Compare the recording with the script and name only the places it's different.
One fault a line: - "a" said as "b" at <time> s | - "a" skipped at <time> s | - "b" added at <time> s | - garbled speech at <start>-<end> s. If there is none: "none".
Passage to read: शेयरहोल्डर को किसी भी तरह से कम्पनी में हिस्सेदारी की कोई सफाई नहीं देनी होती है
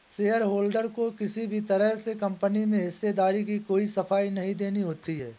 none